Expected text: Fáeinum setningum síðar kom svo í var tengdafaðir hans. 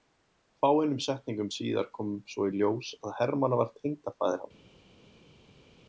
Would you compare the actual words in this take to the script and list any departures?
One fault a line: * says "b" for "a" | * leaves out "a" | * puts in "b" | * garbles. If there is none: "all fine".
* puts in "ljós að Hermann"